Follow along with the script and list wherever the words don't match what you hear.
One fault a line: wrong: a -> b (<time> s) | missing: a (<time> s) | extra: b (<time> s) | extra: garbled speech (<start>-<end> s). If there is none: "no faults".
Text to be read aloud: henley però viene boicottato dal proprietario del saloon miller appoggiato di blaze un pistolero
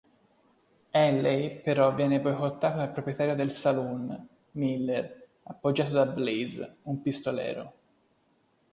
wrong: di -> da (5.9 s)